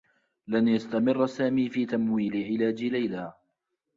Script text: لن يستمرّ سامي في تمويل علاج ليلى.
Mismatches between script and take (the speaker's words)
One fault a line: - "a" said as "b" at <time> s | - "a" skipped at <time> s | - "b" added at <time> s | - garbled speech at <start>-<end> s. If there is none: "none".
none